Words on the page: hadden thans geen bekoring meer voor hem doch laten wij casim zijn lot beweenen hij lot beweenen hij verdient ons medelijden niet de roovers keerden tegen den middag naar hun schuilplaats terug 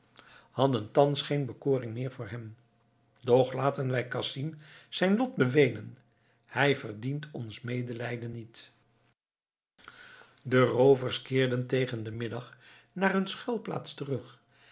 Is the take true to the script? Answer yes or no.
no